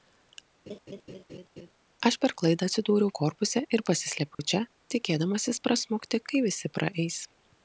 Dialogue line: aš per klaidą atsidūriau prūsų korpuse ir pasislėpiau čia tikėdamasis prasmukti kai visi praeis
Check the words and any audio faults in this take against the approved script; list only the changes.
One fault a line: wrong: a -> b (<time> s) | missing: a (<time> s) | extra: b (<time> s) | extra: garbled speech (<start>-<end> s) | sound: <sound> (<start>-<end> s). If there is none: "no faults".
sound: laugh (0.7-1.7 s)
missing: prūsų (3.1 s)
sound: dropout (4.3-4.4 s)